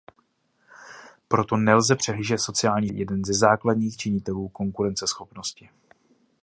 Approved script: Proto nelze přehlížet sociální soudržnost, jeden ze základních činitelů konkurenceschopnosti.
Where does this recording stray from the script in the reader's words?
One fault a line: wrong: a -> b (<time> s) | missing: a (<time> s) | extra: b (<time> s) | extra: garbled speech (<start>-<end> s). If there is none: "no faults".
missing: soudržnost (2.9 s)